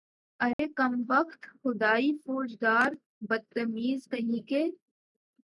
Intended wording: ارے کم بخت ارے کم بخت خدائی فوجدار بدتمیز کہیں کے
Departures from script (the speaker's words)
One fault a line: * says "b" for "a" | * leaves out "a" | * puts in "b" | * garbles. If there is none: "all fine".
* leaves out "ارے کم بخت"